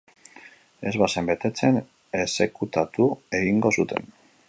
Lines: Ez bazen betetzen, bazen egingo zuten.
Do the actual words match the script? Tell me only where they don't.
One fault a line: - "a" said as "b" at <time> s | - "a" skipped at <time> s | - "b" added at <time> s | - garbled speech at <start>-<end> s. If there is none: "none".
- "bazen" said as "exekutatu" at 2.2 s